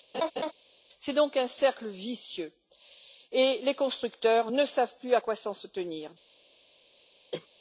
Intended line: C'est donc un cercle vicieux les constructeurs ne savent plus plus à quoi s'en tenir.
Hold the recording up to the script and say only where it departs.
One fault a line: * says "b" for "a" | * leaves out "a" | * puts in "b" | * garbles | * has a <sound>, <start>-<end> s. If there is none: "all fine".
* has a laugh, 0.1-0.5 s
* puts in "et"
* leaves out "plus"
* has a cough, 7.3-7.5 s